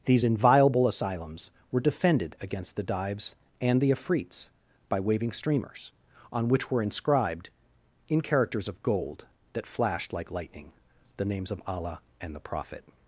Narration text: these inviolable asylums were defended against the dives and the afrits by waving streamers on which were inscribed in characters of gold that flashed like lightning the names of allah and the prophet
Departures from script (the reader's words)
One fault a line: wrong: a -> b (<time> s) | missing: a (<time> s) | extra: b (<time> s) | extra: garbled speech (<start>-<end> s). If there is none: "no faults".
no faults